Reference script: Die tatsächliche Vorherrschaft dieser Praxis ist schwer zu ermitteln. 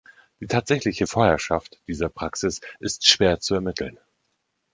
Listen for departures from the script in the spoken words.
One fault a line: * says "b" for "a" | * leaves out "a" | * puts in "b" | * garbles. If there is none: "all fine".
all fine